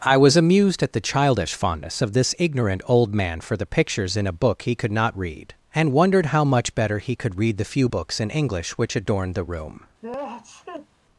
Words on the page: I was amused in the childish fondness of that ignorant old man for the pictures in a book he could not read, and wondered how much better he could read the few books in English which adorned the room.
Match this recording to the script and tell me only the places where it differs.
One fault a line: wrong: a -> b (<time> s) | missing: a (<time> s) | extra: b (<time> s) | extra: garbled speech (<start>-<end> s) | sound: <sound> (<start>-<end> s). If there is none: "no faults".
wrong: in -> at (0.8 s)
wrong: that -> this (2.1 s)
sound: sneeze (10.0-10.9 s)